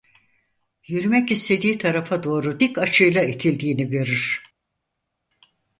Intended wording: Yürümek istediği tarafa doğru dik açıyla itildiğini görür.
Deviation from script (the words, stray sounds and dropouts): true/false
false